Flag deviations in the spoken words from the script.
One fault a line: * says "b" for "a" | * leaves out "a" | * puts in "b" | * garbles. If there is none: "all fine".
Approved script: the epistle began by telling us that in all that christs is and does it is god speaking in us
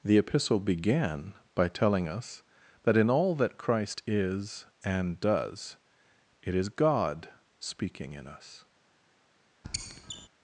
* says "christ" for "christs"